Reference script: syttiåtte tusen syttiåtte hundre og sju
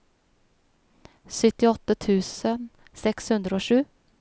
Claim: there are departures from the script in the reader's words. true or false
true